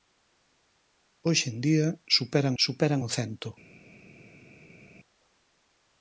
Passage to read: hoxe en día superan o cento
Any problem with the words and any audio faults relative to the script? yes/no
yes